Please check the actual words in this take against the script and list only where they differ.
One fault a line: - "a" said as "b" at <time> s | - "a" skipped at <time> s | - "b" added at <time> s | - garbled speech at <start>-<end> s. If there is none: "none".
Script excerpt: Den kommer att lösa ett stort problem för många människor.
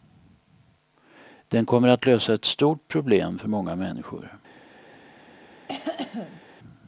none